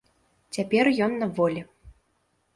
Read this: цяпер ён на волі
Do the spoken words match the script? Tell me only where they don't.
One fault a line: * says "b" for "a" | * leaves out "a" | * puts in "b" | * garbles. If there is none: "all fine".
all fine